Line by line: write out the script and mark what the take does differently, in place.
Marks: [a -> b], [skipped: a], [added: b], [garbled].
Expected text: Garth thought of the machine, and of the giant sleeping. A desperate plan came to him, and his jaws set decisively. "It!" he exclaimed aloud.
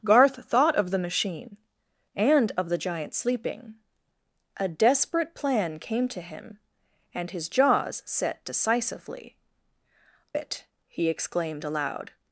Garth thought of the machine, and of the giant sleeping. A desperate plan came to him, and his jaws set decisively. "It!" he exclaimed aloud.